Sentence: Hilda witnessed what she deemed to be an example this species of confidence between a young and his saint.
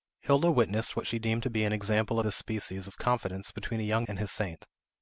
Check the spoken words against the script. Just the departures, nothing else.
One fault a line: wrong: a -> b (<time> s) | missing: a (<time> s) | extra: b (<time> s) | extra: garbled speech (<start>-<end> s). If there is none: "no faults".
no faults